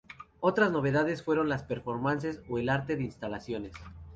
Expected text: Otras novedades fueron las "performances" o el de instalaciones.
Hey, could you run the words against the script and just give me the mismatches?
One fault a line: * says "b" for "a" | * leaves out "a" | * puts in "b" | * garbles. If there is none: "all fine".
* puts in "arte"